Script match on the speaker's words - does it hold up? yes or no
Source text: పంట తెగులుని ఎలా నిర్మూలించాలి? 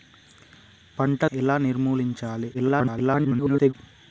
no